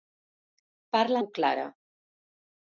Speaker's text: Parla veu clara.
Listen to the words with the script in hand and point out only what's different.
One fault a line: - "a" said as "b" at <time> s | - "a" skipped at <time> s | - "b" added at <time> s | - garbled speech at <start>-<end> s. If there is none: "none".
none